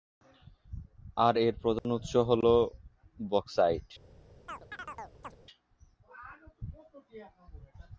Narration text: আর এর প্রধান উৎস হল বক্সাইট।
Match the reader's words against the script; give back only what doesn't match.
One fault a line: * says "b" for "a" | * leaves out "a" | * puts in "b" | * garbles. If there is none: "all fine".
all fine